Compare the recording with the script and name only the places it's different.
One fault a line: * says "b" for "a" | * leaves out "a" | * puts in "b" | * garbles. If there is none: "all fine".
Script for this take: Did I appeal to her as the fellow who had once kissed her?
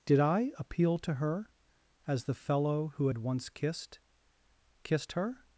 * puts in "kissed"